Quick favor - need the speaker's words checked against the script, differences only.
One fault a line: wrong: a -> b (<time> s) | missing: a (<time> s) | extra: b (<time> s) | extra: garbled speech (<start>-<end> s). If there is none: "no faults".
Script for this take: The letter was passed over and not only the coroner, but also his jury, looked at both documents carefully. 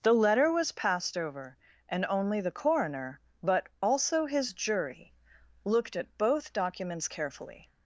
missing: not (2.0 s)